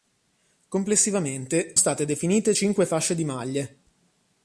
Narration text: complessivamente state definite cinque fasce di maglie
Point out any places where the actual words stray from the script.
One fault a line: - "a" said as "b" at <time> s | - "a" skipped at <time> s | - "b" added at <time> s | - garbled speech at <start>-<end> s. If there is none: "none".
none